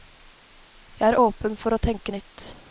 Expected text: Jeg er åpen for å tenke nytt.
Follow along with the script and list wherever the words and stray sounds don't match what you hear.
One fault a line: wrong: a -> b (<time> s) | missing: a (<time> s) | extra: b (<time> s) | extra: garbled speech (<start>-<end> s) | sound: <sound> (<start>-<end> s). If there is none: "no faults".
no faults